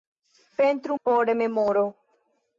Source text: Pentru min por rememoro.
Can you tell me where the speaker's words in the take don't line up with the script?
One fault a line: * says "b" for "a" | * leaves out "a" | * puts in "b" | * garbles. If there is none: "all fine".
* leaves out "min"